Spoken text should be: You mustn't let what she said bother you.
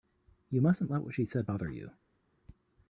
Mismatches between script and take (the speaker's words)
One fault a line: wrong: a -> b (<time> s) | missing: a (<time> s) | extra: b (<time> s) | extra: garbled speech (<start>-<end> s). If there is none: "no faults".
no faults